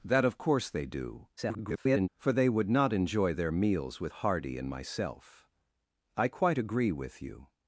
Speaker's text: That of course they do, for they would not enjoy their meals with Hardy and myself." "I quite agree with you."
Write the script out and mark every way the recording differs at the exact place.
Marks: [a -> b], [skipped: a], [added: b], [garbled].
That of course they do, [garbled] for they would not enjoy their meals with Hardy and myself." "I quite agree with you."